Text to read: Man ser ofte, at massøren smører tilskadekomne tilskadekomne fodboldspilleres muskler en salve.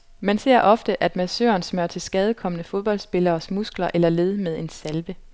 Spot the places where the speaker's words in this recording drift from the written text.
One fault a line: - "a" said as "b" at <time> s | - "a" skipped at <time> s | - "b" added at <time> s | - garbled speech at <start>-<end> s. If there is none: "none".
- "tilskadekomne" skipped at 2.6 s
- "eller led med" added at 3.9 s